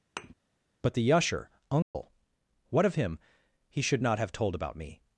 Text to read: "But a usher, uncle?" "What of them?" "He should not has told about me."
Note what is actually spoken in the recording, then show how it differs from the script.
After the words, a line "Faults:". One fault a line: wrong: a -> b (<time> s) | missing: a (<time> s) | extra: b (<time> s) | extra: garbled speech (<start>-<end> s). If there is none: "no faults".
"But the usher, uncle?" "What of him?" "He should not have told about me."
Faults:
wrong: a -> the (0.9 s)
wrong: them -> him (2.9 s)
wrong: has -> have (4.2 s)